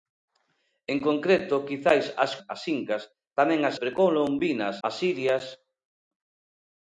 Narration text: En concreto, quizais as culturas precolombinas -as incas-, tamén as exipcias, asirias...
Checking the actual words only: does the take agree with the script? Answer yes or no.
no